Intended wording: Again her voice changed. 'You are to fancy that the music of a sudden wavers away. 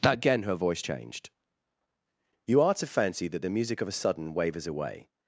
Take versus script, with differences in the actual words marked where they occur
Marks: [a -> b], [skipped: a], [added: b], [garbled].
Again her voice changed. 'You are to fancy that the music of a sudden wavers away.